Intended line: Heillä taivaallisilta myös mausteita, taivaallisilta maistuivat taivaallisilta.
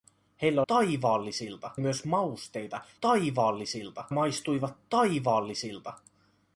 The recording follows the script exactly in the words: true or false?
true